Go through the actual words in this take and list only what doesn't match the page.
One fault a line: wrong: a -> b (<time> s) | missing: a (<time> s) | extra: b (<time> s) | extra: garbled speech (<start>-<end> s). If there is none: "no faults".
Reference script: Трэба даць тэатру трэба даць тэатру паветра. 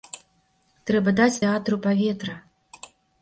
missing: трэба даць тэатру (1.8 s)